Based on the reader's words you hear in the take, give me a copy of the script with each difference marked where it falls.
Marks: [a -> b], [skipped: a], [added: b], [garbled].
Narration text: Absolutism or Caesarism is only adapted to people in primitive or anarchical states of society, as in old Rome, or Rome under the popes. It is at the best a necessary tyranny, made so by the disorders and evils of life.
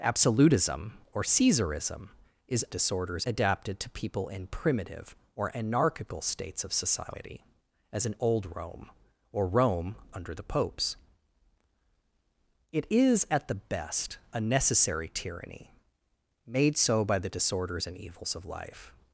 Absolutism or Caesarism is [only -> disorders] adapted to people in primitive or anarchical states of society, as in old Rome, or Rome under the popes. It is at the best a necessary tyranny, made so by the disorders and evils of life.